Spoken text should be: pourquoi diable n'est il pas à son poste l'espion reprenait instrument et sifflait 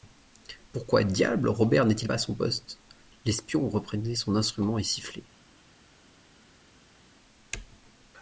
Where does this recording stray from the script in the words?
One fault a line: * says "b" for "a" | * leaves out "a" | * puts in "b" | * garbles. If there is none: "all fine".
* puts in "robert"
* puts in "son"